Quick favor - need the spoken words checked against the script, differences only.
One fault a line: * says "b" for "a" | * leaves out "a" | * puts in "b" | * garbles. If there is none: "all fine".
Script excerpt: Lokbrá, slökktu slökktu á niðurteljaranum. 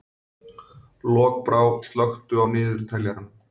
* leaves out "slökktu"